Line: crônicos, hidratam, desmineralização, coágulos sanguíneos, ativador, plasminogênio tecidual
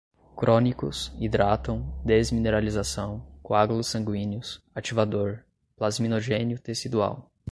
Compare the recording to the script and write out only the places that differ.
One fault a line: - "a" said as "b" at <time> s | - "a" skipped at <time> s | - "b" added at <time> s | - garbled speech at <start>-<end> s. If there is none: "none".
none